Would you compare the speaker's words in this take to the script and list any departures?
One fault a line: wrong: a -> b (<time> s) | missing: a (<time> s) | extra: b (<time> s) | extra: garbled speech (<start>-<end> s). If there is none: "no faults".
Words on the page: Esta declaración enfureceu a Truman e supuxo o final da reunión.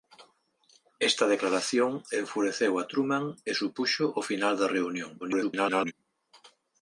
extra: garbled speech (5.2-5.9 s)